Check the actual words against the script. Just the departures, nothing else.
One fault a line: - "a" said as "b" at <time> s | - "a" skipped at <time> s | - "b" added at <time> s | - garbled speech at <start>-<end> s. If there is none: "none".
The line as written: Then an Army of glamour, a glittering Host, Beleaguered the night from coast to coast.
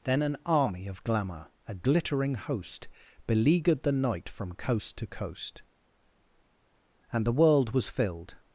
- "And the world was filled" added at 7.1 s